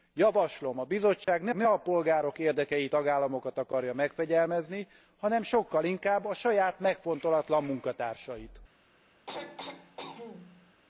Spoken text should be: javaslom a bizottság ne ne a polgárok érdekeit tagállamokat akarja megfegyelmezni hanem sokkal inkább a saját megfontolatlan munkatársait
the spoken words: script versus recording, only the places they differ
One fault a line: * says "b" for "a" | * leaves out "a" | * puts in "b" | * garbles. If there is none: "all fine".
all fine